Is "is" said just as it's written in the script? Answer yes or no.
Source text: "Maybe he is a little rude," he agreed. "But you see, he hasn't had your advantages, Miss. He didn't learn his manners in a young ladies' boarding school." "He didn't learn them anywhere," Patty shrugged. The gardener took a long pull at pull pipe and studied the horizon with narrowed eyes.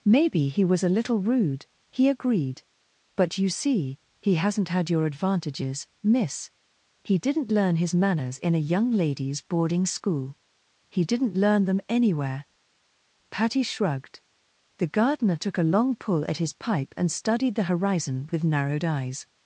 no